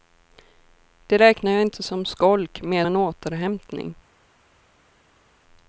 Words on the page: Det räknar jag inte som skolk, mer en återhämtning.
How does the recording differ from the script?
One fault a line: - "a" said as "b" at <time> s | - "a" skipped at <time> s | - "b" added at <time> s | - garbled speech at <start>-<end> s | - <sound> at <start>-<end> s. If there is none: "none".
none